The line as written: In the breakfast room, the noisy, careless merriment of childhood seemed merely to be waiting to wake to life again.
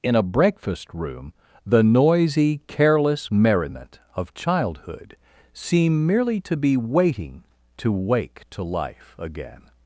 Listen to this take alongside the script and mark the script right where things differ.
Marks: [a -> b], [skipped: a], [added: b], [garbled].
In [the -> a] breakfast room, the noisy, careless merriment of childhood [seemed -> seem] merely to be waiting to wake to life again.